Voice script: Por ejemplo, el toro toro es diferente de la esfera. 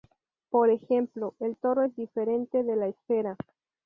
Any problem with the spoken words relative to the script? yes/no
yes